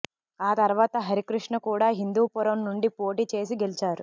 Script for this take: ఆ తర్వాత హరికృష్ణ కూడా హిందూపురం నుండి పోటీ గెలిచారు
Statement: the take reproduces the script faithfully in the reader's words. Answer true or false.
false